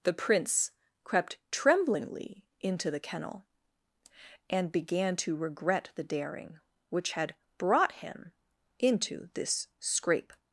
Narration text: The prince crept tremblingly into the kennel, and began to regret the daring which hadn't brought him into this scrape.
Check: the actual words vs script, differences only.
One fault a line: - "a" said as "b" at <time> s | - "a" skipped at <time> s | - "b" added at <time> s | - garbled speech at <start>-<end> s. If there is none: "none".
- "hadn't" said as "had" at 7.1 s